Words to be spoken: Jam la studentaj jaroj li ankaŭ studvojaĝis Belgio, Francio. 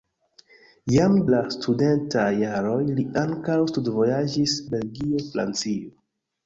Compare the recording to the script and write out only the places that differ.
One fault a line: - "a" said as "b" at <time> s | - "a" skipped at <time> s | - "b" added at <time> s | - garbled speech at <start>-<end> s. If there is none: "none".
none